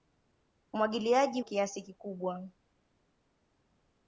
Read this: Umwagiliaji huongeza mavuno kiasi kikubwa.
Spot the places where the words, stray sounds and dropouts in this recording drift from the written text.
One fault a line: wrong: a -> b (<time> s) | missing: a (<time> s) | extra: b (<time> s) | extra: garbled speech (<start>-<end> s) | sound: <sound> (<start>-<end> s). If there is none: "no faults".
missing: huongeza mavuno (1.4 s)